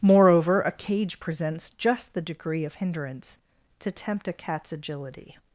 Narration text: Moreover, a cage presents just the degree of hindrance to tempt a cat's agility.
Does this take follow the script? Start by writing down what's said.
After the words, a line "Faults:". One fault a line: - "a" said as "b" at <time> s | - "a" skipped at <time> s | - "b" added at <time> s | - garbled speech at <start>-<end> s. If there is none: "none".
Moreover, a cage presents just the degree of hindrance to tempt a cat's agility.
Faults:
none